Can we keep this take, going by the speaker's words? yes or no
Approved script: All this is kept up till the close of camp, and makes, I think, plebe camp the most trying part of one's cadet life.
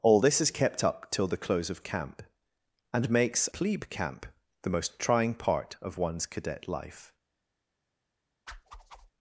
no